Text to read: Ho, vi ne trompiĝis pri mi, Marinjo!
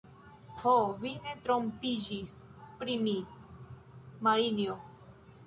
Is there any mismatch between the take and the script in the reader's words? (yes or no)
no